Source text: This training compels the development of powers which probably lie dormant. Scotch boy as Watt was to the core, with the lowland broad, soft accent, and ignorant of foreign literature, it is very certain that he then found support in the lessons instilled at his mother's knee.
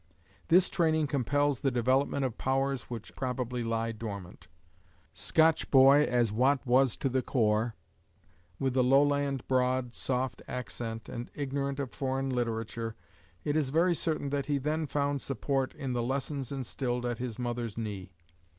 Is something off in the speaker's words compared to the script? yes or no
no